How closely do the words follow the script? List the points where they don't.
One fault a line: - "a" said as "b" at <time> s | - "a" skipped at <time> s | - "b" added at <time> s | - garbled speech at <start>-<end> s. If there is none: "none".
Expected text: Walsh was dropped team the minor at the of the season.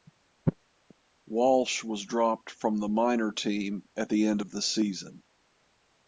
- "team" said as "from" at 2.5 s
- "team" added at 3.3 s
- "end" added at 4.3 s